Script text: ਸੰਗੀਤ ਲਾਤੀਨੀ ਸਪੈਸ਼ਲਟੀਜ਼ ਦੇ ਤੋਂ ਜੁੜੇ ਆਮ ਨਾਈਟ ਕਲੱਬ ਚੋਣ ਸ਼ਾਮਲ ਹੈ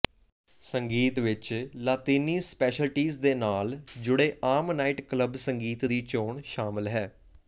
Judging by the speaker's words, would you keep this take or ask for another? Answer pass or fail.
fail